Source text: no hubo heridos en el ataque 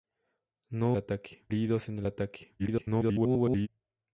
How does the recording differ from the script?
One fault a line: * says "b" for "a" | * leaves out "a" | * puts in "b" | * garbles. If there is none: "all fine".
* says "ataque" for "hubo"
* garbles